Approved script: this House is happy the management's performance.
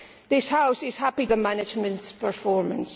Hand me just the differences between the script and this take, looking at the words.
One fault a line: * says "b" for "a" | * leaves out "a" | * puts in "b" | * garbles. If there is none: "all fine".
all fine